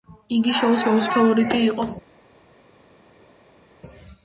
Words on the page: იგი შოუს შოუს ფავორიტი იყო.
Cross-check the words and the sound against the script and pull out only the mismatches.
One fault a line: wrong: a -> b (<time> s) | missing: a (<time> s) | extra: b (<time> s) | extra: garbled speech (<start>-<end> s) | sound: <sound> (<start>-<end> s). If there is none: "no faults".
no faults